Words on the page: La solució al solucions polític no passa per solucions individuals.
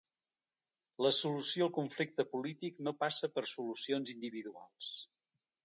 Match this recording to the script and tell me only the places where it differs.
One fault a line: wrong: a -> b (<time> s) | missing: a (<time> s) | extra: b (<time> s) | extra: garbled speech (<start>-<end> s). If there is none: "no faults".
wrong: solucions -> conflicte (1.8 s)